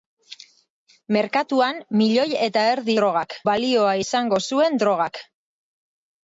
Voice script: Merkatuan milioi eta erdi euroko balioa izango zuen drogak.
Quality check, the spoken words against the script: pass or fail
fail